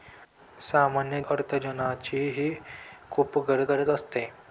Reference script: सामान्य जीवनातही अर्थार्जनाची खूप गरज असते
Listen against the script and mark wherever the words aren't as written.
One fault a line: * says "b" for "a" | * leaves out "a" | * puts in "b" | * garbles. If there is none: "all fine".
* leaves out "जीवनातही"
* puts in "गरज"